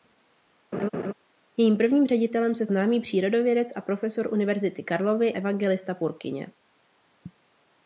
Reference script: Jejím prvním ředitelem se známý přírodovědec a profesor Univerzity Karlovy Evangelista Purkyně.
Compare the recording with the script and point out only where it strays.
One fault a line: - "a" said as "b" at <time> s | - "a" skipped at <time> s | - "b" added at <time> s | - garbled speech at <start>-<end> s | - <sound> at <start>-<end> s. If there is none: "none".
- laugh at 0.7-1.1 s